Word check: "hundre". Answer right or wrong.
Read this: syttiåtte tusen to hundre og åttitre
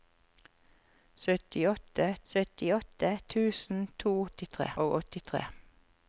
wrong